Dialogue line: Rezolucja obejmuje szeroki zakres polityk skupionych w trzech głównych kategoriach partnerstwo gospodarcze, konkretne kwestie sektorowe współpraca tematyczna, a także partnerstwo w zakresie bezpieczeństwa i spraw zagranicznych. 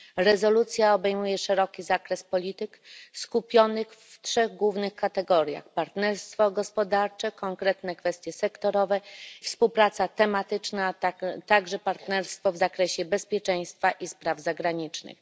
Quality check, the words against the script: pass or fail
pass